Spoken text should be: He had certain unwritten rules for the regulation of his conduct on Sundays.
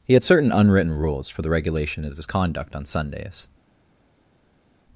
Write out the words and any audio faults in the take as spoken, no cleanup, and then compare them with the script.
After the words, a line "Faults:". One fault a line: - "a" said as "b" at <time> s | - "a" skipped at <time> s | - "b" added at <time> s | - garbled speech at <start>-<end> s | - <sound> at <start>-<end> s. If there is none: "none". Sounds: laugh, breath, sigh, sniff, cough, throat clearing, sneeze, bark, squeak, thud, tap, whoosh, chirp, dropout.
He had certain unwritten rules for the regulation of his conduct on Sundays.
Faults:
none